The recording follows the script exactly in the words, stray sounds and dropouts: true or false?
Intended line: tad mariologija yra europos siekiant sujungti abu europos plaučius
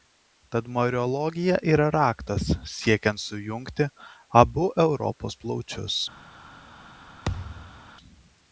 false